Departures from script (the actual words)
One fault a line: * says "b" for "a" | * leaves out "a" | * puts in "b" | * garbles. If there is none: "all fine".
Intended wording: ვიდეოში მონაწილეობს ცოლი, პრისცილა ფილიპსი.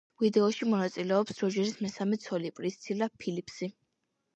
* puts in "როჯერის მესამე"